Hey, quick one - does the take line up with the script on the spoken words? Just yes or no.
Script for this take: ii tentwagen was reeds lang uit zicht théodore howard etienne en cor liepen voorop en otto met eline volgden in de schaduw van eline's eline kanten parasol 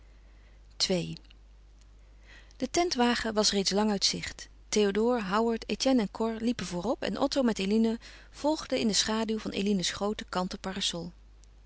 no